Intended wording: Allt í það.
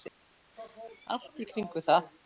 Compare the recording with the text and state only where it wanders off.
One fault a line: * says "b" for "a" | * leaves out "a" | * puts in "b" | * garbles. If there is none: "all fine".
* puts in "kringum"